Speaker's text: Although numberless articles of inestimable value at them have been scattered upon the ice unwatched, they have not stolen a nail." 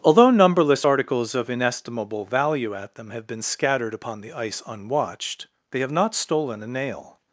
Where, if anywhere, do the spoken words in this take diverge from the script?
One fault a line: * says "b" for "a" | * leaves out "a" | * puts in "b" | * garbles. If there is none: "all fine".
all fine